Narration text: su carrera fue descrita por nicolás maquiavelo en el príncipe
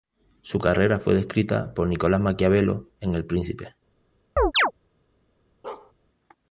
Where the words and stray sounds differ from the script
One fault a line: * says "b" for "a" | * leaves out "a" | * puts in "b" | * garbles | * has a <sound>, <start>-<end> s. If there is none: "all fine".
* has a chirp, 4.4-4.7 s
* has a bark, 5.6-5.9 s